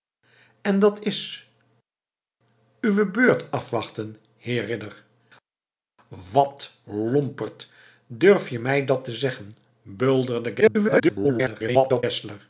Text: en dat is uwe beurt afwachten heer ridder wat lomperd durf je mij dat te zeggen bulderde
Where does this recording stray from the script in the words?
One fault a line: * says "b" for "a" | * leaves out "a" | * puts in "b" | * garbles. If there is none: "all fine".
* garbles